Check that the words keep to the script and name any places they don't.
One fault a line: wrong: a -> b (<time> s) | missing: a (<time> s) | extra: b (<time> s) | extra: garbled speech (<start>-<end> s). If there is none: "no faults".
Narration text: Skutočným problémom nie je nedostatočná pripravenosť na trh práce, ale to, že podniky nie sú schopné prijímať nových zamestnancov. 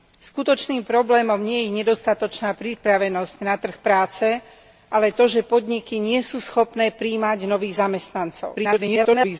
extra: garbled speech (8.5-9.4 s)